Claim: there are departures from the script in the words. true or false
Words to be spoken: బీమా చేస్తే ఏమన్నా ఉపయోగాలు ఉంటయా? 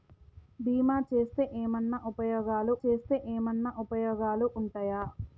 true